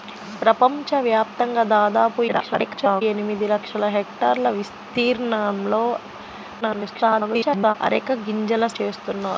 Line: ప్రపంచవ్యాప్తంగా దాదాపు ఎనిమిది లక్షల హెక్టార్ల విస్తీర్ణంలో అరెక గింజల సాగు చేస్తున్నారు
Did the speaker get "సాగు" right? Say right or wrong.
wrong